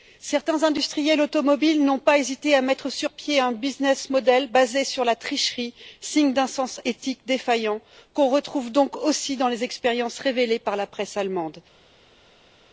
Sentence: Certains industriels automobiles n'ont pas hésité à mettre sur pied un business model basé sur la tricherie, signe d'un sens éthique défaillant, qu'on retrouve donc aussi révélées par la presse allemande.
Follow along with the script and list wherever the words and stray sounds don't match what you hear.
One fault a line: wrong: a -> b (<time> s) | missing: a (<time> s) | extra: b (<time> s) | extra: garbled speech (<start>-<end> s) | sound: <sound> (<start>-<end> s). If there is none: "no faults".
extra: dans les expériences (9.4 s)